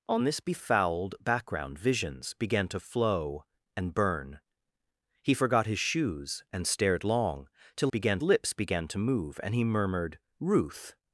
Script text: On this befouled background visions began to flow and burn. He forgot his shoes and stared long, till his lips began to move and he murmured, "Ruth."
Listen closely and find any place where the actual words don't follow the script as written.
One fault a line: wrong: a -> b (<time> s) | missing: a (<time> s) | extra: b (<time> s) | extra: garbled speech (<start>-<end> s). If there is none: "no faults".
wrong: his -> began (7.9 s)